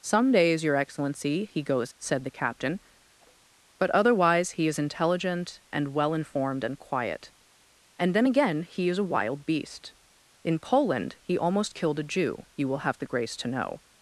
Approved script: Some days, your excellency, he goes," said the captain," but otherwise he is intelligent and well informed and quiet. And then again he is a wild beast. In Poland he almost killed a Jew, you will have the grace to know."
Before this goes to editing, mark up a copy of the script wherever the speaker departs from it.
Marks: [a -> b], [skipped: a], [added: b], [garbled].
Some days, your excellency, he goes," said the captain," but otherwise he is intelligent and well informed and quiet. And then again he is a wild beast. In Poland he almost killed a Jew, you will have the grace to know."